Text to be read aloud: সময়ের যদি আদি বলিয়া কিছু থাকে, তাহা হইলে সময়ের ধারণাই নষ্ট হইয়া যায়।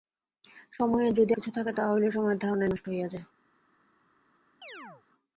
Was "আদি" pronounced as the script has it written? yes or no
no